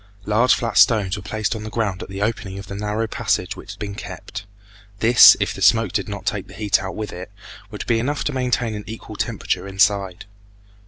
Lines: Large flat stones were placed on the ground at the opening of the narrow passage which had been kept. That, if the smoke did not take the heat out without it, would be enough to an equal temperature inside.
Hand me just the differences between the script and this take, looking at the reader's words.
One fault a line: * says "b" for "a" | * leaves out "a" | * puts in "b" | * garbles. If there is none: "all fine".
* says "This" for "That"
* says "with" for "without"
* puts in "maintain"